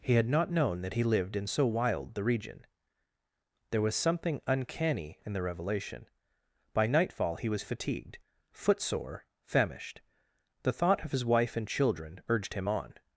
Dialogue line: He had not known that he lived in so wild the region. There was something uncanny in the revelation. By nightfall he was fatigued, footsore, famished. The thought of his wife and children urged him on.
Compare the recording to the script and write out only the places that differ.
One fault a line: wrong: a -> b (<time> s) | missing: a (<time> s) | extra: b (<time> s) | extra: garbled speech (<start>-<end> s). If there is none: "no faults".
no faults